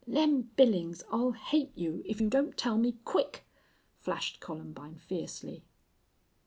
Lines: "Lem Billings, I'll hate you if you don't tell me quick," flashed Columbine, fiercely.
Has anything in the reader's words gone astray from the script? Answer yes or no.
no